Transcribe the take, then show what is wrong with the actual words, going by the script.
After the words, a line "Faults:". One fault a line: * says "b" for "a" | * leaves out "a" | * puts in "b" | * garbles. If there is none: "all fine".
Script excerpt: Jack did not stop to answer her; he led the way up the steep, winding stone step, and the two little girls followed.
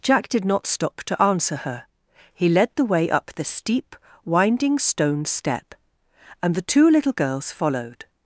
Jack did not stop to answer her; he led the way up the steep, winding stone step, and the two little girls followed.
Faults:
all fine